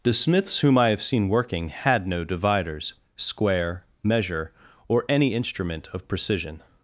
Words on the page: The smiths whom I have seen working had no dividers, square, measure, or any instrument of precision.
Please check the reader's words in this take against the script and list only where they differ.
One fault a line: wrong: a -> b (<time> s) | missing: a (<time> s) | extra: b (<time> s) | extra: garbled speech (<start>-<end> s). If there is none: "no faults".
no faults